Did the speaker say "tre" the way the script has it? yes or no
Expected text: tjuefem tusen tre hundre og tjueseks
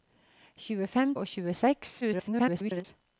no